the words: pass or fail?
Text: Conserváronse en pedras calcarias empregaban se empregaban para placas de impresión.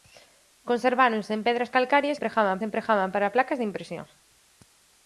pass